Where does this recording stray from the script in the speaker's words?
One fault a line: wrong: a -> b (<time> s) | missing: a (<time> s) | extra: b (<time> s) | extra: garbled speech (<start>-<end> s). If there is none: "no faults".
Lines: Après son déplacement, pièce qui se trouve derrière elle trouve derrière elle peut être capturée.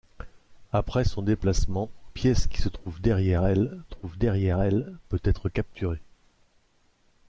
no faults